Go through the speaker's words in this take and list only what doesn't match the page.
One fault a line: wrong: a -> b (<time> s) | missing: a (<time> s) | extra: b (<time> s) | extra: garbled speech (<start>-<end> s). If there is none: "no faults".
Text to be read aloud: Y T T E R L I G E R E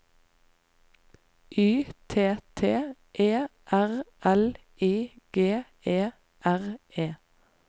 no faults